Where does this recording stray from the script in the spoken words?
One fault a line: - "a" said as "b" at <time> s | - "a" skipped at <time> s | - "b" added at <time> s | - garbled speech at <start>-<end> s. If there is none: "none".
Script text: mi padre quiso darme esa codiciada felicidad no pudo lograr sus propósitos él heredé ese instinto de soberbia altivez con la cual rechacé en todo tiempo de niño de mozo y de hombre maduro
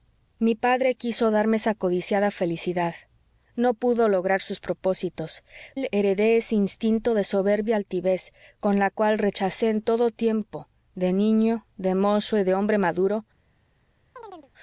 none